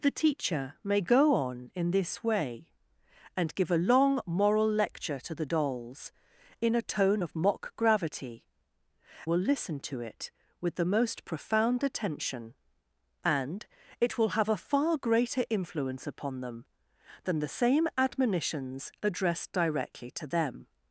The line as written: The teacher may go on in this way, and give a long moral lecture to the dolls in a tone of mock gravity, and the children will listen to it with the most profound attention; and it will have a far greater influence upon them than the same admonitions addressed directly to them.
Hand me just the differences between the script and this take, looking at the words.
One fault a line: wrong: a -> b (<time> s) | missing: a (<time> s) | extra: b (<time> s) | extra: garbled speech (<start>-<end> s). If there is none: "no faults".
missing: and the children (8.5 s)